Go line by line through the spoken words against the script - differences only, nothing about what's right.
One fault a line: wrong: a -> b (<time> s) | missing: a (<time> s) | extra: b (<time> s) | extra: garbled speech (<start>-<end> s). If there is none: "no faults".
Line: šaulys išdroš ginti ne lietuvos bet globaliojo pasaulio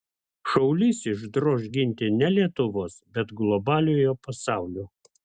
no faults